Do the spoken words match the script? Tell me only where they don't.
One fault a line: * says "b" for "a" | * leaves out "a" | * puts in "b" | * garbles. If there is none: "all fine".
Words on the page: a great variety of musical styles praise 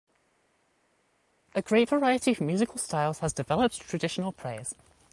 * puts in "has developed traditional"